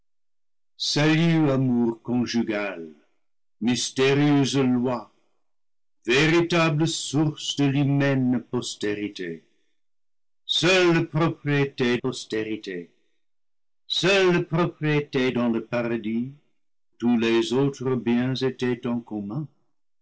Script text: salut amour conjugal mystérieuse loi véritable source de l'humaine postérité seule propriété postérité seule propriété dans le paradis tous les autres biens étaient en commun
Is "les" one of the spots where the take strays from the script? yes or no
no